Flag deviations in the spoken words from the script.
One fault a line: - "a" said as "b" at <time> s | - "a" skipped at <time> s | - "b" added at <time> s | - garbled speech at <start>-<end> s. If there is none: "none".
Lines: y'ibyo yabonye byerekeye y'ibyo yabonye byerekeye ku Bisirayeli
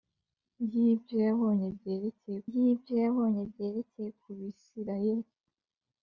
none